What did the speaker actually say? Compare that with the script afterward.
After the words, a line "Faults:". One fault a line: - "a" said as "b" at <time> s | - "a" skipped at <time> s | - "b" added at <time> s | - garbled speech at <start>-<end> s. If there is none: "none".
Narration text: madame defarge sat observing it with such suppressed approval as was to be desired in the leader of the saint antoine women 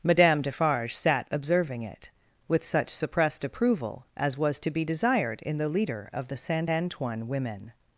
madame defarge sat observing it with such suppressed approval as was to be desired in the leader of the saint antoine women
Faults:
none